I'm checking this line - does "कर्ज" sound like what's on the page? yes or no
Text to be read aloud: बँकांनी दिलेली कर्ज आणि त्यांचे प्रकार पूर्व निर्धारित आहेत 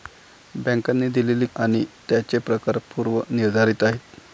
no